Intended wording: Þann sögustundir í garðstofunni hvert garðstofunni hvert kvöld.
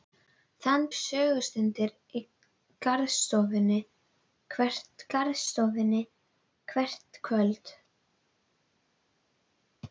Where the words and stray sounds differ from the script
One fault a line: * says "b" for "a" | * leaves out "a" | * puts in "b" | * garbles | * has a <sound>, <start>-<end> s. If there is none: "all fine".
all fine